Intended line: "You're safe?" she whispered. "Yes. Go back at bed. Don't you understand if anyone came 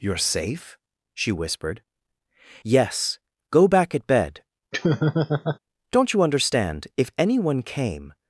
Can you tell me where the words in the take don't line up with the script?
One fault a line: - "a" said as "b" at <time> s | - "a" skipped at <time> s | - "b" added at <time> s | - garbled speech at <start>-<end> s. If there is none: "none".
none